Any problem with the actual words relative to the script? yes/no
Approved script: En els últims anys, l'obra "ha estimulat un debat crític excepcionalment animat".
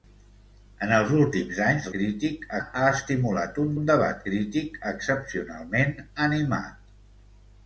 yes